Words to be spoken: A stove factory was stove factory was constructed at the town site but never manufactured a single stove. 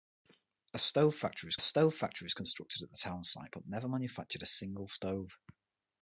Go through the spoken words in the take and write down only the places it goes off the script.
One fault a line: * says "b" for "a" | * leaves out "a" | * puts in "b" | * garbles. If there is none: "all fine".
all fine